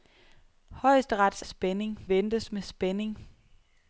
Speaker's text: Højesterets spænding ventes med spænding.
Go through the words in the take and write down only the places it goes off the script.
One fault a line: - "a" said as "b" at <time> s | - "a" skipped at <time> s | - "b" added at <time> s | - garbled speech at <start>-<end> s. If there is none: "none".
none